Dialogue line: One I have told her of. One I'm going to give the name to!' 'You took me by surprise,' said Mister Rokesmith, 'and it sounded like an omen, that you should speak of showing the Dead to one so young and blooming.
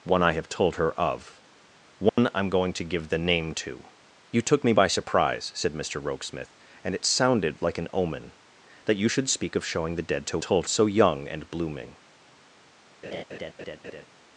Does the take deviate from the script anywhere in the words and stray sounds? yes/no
yes